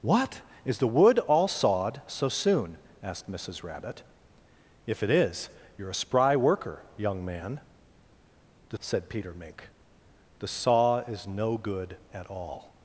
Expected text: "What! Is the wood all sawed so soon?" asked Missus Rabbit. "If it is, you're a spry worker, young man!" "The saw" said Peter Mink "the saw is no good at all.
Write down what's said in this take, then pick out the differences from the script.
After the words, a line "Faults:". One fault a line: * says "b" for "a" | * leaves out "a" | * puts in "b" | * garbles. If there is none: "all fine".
"What! Is the wood all sawed so soon?" asked Missus Rabbit. "If it is, you're a spry worker, young man!" "The" said Peter Mink "the saw is no good at all.
Faults:
* leaves out "saw"